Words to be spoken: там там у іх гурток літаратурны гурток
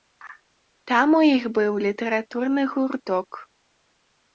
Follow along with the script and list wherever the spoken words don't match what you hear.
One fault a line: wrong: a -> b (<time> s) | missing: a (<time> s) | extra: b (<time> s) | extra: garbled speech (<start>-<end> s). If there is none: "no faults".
missing: там (1.1 s)
wrong: гурток -> быў (1.6 s)